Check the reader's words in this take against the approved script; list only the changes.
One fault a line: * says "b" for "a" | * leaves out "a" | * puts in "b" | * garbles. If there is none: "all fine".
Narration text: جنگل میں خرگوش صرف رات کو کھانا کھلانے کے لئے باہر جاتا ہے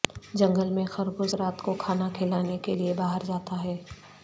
* leaves out "صرف"